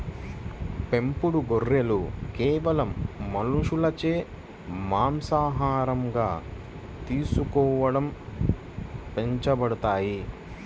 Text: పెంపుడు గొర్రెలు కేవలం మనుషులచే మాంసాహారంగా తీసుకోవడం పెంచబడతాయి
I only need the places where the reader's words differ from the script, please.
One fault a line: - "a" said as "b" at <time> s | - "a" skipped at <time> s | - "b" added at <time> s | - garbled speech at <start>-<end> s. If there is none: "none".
none